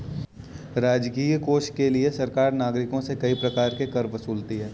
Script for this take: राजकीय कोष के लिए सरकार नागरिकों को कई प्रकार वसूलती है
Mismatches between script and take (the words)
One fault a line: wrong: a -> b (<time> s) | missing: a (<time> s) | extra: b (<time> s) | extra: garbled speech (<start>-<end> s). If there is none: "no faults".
wrong: को -> से (3.0 s)
extra: के कर (3.8 s)